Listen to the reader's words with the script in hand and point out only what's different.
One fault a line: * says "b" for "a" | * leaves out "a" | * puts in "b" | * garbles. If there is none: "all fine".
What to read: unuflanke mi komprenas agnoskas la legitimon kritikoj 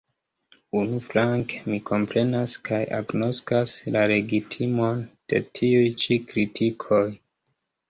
* puts in "kaj"
* puts in "de tiuj ĉi"